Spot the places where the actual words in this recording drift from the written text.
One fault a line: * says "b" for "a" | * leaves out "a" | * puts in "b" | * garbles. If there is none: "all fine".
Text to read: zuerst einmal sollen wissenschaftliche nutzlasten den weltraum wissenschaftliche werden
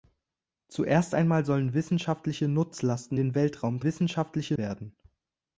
all fine